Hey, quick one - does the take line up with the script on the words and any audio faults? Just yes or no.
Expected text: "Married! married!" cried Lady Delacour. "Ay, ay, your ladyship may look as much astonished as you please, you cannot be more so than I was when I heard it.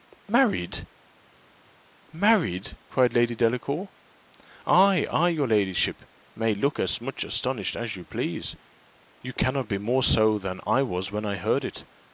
yes